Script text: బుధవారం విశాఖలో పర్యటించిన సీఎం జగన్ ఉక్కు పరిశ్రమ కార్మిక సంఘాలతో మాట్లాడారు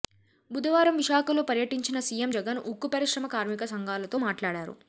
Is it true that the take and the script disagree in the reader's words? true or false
false